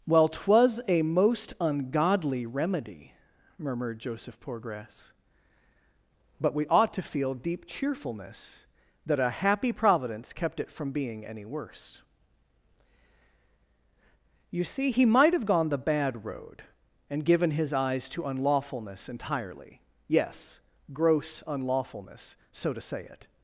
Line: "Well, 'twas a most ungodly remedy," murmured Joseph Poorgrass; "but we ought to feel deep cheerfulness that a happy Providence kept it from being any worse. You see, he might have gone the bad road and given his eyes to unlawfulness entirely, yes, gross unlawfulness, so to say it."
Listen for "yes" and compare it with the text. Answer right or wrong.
right